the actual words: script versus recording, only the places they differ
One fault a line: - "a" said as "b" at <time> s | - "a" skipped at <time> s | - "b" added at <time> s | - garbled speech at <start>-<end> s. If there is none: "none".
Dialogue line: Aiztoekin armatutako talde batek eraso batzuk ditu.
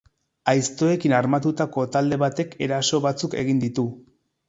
- "egin" added at 3.4 s